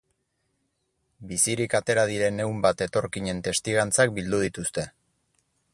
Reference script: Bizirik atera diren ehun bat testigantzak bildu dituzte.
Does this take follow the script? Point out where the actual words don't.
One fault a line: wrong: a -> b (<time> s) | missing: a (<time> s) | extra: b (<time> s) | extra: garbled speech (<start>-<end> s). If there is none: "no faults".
extra: etorkinen (2.9 s)